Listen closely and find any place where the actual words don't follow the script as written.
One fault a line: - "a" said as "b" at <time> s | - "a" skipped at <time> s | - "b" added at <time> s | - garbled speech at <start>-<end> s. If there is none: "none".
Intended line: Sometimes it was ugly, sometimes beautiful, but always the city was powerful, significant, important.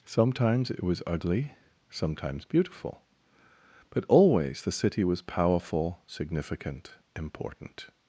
none